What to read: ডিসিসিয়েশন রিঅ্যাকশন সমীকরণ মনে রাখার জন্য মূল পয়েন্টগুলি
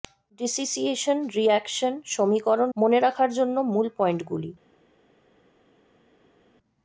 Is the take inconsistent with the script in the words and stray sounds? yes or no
no